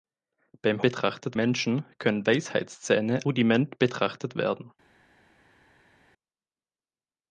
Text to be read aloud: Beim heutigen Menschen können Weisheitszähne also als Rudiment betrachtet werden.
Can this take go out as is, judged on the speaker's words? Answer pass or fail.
fail